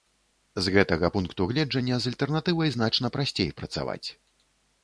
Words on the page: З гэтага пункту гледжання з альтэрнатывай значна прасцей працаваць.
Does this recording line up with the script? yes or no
yes